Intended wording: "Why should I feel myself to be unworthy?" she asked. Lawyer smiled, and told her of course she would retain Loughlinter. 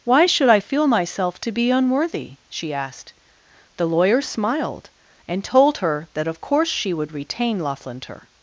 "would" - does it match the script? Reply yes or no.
yes